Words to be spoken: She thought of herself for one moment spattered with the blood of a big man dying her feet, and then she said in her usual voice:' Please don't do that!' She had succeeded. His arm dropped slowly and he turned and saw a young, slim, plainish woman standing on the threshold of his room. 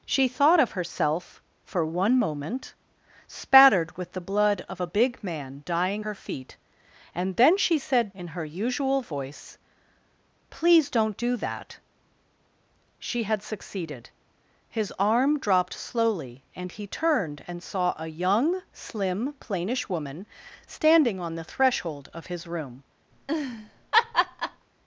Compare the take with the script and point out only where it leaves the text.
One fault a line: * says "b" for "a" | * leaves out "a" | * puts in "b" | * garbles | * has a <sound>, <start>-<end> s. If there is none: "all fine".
* has a laugh, 23.1-24.7 s